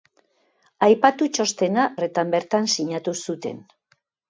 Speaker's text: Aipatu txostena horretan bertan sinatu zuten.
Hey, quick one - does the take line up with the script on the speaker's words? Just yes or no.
yes